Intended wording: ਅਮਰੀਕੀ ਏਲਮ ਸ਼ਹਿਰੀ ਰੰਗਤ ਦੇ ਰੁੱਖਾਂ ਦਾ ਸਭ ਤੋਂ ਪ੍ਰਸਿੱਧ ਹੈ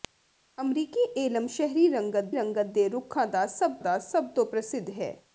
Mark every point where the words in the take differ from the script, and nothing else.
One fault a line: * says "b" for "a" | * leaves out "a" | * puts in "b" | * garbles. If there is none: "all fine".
* puts in "ਰੰਗਤ"
* puts in "ਦਾ ਸਭ"